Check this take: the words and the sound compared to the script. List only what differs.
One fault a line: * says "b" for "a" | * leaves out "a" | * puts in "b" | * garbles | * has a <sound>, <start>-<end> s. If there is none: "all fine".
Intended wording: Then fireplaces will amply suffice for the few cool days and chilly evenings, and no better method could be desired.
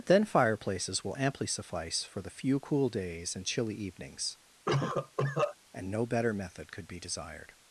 * has a cough, 4.6-5.5 s